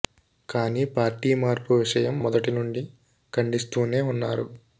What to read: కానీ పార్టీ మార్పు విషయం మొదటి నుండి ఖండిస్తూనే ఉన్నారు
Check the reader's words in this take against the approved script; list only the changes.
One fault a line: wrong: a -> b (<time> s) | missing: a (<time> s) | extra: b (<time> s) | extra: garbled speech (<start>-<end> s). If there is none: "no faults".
no faults